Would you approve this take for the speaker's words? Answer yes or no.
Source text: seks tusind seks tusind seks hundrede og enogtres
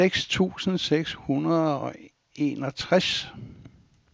no